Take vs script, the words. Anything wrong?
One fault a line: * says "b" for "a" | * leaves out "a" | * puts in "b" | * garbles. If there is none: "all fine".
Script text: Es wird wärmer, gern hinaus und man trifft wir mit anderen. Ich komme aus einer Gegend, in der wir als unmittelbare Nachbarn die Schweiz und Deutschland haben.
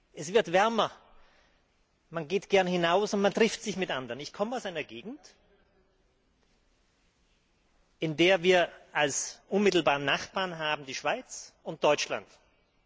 * puts in "man geht"
* says "sich" for "wir"